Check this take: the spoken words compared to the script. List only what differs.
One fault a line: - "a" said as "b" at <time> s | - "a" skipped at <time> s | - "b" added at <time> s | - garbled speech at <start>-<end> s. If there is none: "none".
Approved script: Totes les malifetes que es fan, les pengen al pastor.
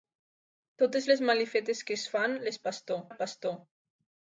- "pengen" said as "pastor" at 2.7 s